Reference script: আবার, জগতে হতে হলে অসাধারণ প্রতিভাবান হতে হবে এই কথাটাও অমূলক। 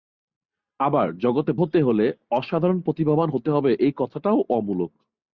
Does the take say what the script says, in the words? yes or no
yes